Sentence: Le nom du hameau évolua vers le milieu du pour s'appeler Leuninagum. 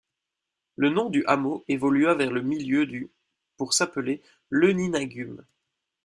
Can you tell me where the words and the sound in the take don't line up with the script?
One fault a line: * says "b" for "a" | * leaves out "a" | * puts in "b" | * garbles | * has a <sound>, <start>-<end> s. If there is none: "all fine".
all fine